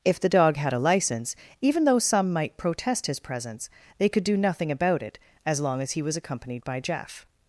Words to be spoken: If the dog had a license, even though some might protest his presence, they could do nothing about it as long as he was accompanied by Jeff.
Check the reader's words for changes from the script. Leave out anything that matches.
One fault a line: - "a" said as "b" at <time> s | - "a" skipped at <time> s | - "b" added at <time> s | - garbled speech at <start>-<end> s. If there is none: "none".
none